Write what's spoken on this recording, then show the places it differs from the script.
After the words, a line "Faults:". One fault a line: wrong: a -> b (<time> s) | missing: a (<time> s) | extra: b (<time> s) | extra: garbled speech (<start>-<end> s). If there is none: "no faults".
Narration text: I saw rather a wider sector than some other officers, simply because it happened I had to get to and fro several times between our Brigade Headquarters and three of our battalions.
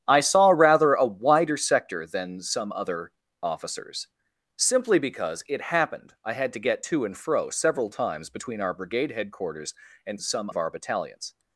I saw rather a wider sector than some other officers, simply because it happened I had to get to and fro several times between our Brigade Headquarters and some of our battalions.
Faults:
wrong: three -> some (10.2 s)